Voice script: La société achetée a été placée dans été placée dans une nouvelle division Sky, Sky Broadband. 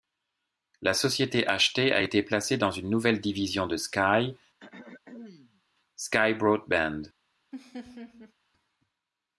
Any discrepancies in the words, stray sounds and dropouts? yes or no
yes